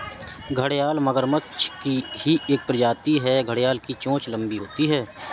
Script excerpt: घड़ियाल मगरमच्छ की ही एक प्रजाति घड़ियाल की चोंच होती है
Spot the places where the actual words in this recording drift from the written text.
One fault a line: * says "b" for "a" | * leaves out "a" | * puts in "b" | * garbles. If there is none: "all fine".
* puts in "है"
* puts in "लंबी"